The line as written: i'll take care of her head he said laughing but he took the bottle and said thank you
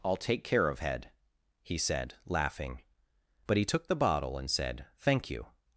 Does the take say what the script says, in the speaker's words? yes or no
no